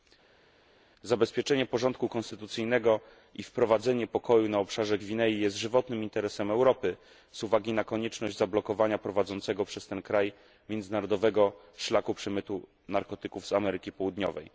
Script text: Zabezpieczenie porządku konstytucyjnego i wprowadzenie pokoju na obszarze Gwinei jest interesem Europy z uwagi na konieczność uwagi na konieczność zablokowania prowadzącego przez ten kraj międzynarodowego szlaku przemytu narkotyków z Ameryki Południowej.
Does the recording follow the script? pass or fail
fail